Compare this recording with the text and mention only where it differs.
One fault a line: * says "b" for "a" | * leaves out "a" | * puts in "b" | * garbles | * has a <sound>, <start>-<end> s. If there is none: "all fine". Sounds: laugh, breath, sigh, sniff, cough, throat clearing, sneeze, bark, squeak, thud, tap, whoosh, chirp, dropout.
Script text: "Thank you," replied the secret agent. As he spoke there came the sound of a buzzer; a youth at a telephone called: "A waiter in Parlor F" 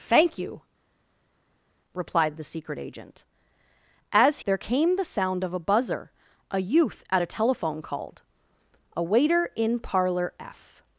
* leaves out "he spoke"